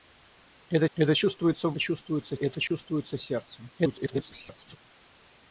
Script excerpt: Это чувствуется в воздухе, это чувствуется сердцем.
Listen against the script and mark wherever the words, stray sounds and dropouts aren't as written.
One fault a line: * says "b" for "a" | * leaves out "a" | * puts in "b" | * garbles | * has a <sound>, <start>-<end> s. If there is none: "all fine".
* puts in "это"
* says "чувствуется" for "воздухе"
* has a dropout, 2.7-2.7 s
* garbles